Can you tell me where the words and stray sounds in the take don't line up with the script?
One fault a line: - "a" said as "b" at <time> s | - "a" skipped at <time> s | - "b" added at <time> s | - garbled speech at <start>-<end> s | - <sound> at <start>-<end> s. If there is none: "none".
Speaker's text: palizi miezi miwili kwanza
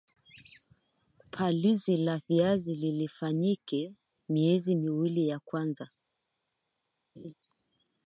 - "la viazi lifanyike" added at 2.0 s
- "ya" added at 5.3 s
- laugh at 7.2-7.3 s